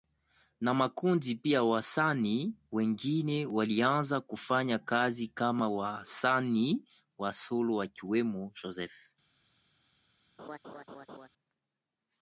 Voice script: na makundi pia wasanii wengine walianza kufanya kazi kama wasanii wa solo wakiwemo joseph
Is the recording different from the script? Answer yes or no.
no